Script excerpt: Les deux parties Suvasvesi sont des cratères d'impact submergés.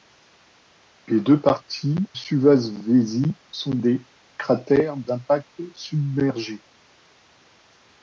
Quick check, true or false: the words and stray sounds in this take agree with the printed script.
true